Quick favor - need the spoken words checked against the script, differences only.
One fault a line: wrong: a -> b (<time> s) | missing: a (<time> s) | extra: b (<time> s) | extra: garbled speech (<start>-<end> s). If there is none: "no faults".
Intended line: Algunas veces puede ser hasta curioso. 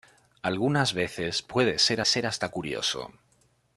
extra: ser (2.0 s)